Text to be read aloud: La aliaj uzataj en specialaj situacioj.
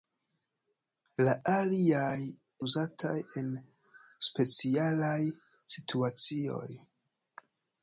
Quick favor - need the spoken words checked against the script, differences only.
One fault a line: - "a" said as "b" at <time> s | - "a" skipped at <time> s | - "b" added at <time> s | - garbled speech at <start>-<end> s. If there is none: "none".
none